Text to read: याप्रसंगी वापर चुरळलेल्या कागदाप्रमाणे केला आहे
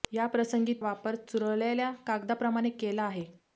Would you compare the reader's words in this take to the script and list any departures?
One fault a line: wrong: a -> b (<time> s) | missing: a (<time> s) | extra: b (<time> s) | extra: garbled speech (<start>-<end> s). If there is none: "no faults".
no faults